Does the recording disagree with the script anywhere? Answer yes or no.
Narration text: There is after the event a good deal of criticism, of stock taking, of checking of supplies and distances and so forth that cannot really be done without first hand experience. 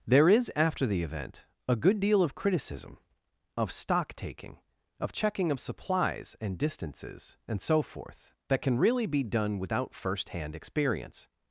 yes